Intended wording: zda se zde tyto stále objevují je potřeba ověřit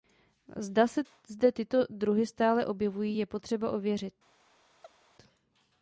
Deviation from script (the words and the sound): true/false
true